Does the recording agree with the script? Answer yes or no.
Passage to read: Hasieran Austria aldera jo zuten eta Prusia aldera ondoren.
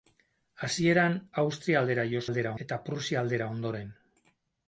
no